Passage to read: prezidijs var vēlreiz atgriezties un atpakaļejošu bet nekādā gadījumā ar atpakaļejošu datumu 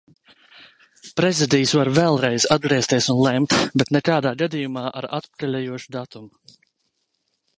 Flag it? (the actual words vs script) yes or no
yes